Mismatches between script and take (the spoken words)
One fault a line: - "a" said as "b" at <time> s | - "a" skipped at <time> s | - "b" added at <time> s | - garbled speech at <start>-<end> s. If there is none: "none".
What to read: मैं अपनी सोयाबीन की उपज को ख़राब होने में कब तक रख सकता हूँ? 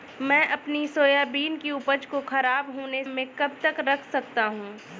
none